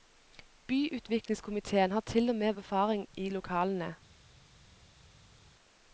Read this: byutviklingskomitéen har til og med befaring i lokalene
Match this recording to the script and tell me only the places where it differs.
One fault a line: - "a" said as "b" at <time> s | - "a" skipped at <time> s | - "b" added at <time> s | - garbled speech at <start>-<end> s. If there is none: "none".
none